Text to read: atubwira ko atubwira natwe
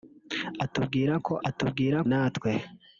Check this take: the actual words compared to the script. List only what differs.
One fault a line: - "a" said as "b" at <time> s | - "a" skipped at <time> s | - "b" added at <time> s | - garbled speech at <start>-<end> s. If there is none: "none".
none